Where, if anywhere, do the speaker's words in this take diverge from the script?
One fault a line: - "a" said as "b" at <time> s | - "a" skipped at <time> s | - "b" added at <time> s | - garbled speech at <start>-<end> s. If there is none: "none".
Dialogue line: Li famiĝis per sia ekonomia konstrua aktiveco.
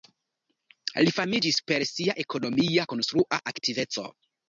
none